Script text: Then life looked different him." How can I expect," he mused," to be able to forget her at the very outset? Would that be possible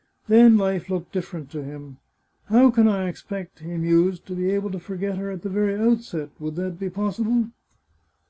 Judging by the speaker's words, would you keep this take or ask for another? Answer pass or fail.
fail